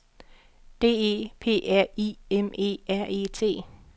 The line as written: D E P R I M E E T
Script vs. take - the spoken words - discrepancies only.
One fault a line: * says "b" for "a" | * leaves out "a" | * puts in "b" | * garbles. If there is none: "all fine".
* puts in "R"